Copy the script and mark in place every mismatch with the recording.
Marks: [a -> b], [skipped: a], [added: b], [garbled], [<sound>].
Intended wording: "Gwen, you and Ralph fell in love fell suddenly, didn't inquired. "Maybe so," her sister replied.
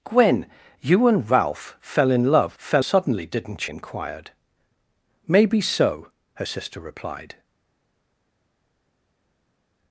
"Gwen, you and Ralph fell in love fell suddenly, didn't inquired. "Maybe so," her sister replied.